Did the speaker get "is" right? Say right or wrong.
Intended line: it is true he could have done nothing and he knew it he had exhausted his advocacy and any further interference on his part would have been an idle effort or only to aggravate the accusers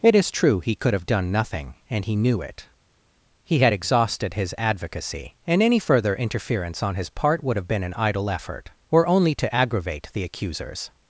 right